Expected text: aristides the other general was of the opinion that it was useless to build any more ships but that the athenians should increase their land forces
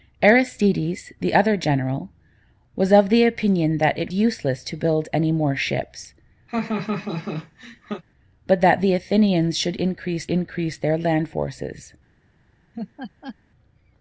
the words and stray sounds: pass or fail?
fail